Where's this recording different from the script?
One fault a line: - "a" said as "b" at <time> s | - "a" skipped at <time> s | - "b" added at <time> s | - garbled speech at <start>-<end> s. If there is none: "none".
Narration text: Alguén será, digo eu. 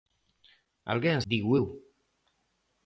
- "será" skipped at 1.2 s